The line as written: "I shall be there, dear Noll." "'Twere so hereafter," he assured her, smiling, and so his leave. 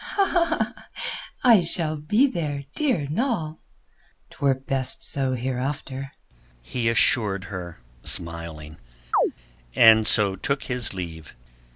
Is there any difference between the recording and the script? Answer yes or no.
yes